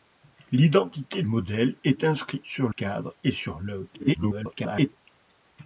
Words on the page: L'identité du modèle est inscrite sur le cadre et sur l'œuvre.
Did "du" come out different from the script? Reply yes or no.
yes